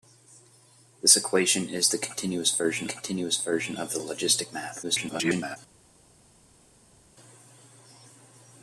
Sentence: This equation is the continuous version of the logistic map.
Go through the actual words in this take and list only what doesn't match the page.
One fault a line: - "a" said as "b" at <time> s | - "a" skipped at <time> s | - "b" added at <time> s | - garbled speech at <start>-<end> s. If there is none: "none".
- "continuous version" added at 2.9 s
- garbled speech at 4.8-5.6 s